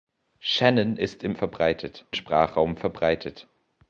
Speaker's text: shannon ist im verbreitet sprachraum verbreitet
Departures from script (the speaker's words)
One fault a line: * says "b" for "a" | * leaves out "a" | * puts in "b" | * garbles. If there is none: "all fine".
all fine